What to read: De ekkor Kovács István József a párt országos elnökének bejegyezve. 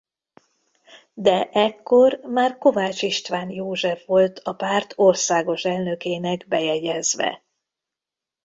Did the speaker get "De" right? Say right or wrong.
right